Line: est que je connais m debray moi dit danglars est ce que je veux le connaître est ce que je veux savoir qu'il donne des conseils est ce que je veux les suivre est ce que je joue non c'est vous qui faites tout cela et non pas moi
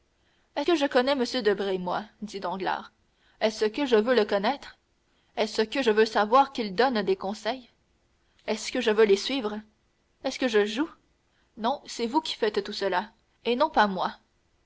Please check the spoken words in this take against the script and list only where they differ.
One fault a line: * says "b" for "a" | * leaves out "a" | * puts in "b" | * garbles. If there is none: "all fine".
all fine